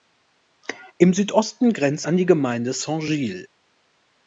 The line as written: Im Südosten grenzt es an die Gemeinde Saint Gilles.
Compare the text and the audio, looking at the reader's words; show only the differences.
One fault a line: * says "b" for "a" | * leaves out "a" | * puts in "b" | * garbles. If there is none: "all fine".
* leaves out "es"